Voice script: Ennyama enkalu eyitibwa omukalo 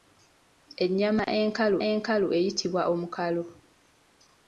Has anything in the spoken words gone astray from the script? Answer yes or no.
yes